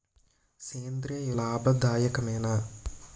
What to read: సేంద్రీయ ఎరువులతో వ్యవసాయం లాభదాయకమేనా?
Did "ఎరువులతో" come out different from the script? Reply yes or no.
yes